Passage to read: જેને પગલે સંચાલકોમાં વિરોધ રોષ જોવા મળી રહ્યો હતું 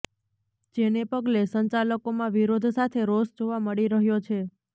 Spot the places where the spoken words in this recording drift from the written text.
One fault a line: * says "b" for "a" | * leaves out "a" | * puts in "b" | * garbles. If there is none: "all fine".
* puts in "સાથે"
* says "છે" for "હતું"